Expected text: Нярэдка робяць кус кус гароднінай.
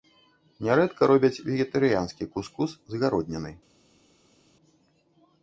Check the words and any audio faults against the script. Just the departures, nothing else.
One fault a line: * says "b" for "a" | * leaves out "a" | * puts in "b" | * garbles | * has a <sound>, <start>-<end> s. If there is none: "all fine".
* puts in "вегетарыянскі"
* puts in "з"